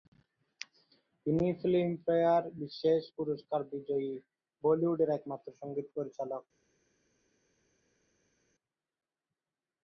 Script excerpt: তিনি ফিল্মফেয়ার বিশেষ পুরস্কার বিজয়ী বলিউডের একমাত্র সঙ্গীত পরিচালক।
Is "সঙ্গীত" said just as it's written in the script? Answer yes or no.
yes